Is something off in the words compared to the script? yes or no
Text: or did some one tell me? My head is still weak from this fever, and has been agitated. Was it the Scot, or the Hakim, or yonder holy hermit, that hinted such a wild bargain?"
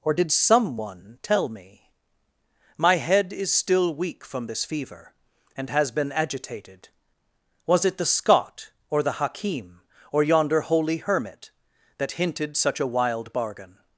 no